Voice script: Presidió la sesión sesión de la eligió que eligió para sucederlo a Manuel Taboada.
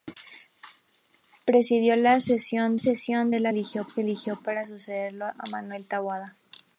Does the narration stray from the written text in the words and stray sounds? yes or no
no